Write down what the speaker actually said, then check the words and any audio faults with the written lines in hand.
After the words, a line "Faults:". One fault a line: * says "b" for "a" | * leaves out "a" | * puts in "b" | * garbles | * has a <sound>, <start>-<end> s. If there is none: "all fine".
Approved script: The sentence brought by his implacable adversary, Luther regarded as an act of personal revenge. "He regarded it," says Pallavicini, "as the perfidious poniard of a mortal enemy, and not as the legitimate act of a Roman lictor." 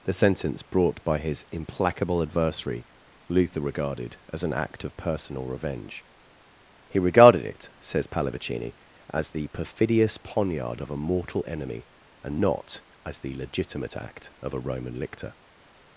The sentence brought by his implacable adversary, Luther regarded as an act of personal revenge. "He regarded it," says Pallavicini, "as the perfidious poniard of a mortal enemy, and not as the legitimate act of a Roman lictor."
Faults:
all fine